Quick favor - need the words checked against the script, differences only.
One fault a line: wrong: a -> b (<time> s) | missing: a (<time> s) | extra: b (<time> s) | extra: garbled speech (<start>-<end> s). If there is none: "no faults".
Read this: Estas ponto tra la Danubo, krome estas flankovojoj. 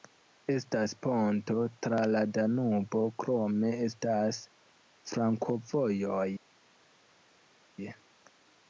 no faults